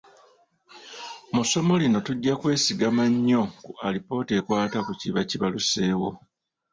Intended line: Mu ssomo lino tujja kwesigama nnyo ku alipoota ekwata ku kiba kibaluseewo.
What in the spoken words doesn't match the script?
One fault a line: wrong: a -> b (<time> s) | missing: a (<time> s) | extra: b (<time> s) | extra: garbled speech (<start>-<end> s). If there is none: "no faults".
no faults